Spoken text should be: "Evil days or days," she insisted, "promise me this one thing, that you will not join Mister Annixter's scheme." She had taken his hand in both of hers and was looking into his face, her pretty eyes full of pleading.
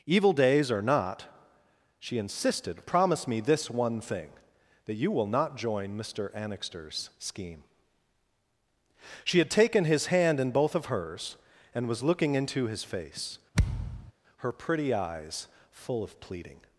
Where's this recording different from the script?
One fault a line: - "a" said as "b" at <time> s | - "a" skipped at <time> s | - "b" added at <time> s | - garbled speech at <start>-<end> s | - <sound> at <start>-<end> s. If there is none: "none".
- "days" said as "not" at 0.8 s
- thud at 13.5-14.1 s